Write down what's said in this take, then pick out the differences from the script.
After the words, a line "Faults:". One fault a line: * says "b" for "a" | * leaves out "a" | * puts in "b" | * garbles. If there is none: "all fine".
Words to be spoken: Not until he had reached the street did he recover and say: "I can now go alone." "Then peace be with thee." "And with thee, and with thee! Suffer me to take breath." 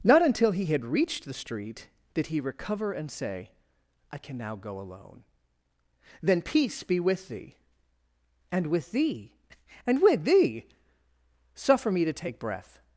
Not until he had reached the street did he recover and say: "I can now go alone." "Then peace be with thee." "And with thee, and with thee! Suffer me to take breath."
Faults:
all fine